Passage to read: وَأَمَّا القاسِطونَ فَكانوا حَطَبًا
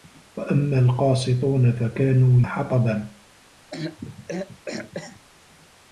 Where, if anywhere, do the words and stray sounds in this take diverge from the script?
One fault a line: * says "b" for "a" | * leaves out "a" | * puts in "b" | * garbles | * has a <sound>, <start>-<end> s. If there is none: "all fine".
* has a throat clearing, 3.7-5.2 s